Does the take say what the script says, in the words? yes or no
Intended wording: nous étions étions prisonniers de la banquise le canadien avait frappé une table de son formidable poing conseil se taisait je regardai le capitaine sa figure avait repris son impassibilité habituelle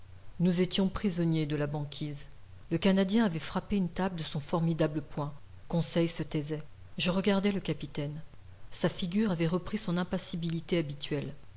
no